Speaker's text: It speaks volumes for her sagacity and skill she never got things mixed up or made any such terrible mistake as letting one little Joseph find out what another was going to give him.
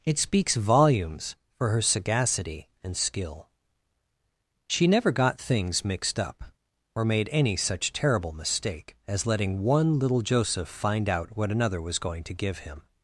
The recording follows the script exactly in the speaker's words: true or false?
true